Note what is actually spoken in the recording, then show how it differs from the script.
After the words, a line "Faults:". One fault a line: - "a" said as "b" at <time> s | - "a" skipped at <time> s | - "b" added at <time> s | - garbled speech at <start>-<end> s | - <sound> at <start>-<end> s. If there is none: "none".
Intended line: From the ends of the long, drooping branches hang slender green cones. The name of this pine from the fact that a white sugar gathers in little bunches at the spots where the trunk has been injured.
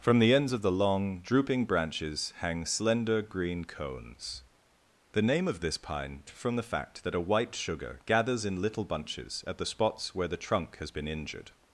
From the ends of the long, drooping branches hang slender green cones. The name of this pine from the fact that a white sugar gathers in little bunches at the spots where the trunk has been injured.
Faults:
none